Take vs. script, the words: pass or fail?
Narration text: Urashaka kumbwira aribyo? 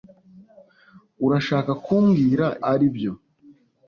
pass